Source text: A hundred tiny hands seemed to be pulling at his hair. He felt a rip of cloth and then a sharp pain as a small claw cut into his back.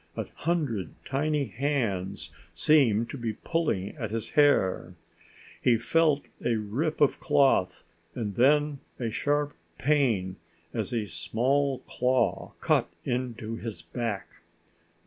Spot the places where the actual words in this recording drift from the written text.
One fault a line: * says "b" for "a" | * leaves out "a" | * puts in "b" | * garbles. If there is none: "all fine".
all fine